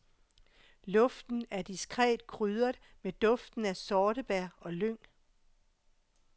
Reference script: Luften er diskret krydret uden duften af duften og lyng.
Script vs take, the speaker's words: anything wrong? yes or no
yes